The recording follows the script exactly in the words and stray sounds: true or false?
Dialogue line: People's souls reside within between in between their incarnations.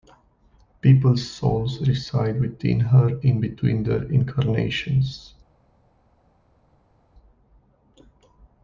false